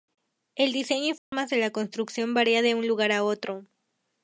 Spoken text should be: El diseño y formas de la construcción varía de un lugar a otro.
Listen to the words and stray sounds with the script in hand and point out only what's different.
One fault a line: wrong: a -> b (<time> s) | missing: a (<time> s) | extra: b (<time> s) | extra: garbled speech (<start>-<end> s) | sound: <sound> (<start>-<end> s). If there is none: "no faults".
sound: dropout (1.2-1.3 s)